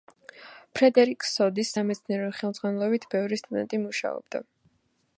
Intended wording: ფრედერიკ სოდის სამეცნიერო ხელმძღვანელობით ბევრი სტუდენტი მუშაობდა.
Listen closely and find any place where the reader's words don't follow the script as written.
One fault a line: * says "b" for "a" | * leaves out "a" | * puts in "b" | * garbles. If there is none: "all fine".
all fine